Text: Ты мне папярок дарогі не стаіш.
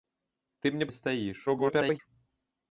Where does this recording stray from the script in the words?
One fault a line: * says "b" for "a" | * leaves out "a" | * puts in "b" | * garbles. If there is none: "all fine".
* leaves out "папярок дарогі"
* garbles